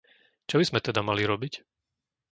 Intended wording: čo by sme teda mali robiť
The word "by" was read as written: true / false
true